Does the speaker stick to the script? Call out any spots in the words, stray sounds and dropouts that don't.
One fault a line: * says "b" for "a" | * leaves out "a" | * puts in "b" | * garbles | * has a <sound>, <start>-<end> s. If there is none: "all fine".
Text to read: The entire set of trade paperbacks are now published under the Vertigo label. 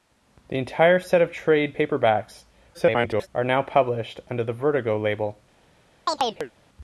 * garbles
* has a chirp, 6.1-6.5 s